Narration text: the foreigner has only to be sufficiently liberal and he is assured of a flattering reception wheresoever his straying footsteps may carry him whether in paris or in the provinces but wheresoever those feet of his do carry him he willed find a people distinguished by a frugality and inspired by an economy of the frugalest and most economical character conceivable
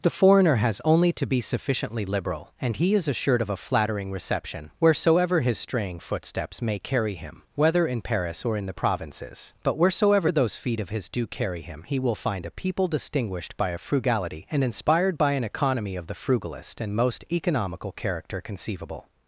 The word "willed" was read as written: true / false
false